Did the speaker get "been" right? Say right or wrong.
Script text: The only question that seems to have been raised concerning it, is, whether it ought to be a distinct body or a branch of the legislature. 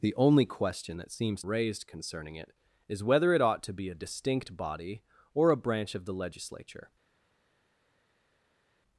wrong